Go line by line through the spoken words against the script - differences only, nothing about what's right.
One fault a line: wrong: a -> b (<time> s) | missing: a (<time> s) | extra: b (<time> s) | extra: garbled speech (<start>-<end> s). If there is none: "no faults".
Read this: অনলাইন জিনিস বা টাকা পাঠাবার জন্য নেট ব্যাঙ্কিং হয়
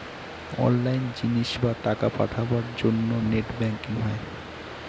no faults